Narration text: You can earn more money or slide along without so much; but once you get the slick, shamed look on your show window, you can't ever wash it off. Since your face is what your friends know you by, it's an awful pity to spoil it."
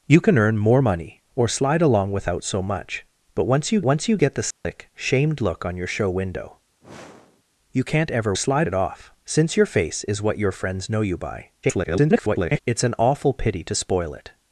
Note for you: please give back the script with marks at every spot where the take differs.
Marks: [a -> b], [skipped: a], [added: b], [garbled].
You can earn more money or slide along without so much; but once you [added: once you] get the slick, shamed look on your show window, you can't ever [wash -> slide] it off. Since your face is what your friends know you by, [garbled] it's an awful pity to spoil it."